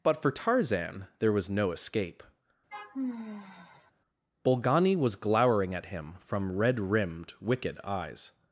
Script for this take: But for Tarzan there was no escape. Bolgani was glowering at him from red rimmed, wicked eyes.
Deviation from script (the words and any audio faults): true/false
true